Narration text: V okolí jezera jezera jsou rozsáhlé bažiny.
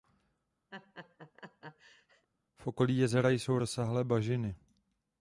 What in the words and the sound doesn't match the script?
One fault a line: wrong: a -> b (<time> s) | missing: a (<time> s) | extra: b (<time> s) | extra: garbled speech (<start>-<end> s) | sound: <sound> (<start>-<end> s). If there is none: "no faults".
sound: laugh (0.7-2.3 s)
missing: jezera (3.3 s)